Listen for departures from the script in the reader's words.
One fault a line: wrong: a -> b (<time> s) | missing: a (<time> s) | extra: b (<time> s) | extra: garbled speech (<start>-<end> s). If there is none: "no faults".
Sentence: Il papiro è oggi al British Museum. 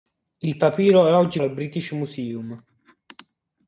no faults